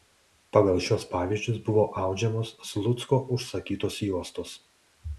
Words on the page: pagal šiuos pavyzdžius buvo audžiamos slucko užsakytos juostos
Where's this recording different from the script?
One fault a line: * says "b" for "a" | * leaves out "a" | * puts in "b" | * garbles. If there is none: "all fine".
all fine